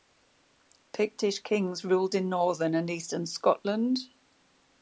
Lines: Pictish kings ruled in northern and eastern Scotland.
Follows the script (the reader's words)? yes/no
yes